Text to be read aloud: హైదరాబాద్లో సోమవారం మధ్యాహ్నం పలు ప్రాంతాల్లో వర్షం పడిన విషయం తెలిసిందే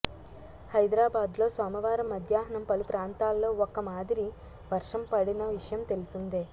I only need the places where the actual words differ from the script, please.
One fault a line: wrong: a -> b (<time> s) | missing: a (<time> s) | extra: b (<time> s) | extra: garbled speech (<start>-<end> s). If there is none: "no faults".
extra: ఒక మాదిరి (3.7 s)